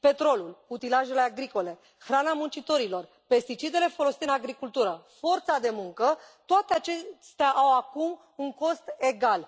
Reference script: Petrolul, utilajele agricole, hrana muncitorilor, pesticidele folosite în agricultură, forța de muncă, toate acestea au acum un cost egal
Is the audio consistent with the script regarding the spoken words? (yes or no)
yes